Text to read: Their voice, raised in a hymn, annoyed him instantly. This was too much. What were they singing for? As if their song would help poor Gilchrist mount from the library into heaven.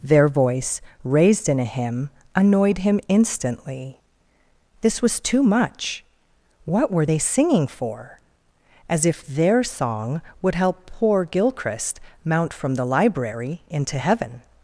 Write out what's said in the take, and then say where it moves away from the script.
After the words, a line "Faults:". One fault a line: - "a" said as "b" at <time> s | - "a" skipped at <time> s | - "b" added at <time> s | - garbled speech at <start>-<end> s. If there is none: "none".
Their voice, raised in a hymn, annoyed him instantly. This was too much. What were they singing for? As if their song would help poor Gilchrist mount from the library into heaven.
Faults:
none